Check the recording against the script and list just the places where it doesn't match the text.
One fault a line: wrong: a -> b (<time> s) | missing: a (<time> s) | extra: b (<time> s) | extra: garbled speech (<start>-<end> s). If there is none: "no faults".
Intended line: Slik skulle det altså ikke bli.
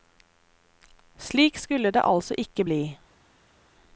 no faults